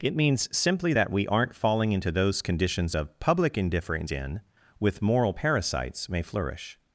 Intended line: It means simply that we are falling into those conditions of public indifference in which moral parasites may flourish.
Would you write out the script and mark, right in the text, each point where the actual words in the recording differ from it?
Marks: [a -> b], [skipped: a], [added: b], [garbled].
It means simply that we [are -> aren't] falling into those conditions of public indifference in [which -> with] moral parasites may flourish.